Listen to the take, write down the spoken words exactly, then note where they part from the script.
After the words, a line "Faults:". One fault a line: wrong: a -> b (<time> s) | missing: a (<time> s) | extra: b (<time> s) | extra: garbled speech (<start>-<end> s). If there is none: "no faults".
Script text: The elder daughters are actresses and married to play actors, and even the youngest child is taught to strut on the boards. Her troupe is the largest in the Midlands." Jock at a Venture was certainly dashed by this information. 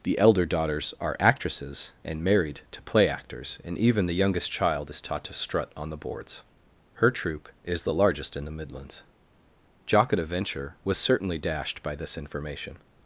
The elder daughters are actresses and married to play actors, and even the youngest child is taught to strut on the boards. Her troupe is the largest in the Midlands." Jock at a Venture was certainly dashed by this information.
Faults:
no faults